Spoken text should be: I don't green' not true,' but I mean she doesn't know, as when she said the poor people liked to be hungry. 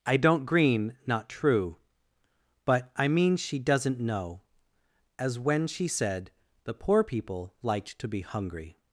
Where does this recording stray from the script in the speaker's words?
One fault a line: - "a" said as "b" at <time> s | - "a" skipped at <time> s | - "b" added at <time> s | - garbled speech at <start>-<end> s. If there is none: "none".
none